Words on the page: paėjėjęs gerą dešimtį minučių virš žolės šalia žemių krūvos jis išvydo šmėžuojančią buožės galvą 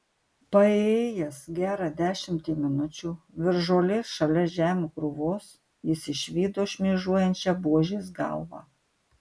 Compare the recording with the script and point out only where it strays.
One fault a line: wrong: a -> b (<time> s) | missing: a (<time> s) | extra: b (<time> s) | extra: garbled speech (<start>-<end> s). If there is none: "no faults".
no faults